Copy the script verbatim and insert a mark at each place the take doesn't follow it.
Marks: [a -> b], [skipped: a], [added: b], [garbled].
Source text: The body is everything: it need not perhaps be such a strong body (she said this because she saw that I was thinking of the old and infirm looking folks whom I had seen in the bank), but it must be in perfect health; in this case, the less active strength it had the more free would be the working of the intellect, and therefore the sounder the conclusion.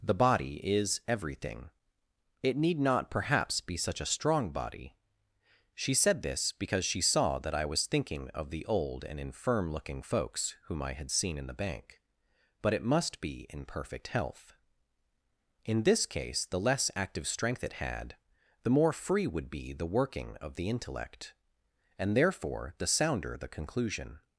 The body is everything: it need not perhaps be such a strong body (she said this because she saw that I was thinking of the old and infirm looking folks whom I had seen in the bank), but it must be in perfect health; in this case, the less active strength it had the more free would be the working of the intellect, and therefore the sounder the conclusion.